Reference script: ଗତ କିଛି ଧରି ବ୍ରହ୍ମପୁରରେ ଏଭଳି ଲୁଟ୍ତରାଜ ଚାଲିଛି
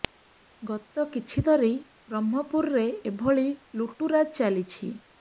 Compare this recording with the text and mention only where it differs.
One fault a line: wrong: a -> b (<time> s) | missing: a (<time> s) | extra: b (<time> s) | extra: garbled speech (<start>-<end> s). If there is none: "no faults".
no faults